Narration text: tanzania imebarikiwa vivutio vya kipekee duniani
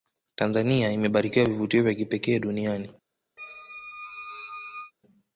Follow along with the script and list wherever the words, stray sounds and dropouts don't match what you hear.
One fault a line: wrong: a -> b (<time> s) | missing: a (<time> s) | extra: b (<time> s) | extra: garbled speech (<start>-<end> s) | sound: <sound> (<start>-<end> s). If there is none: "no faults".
sound: squeak (3.4-4.9 s)